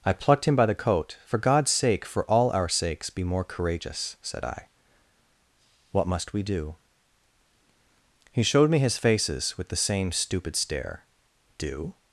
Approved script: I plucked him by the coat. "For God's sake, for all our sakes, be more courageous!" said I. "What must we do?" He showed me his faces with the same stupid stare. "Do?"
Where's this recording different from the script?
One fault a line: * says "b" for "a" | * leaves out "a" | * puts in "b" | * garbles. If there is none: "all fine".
all fine